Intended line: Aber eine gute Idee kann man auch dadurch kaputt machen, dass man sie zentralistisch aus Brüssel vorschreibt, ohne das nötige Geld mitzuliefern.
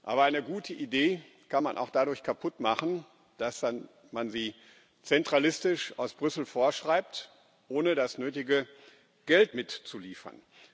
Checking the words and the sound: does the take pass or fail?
pass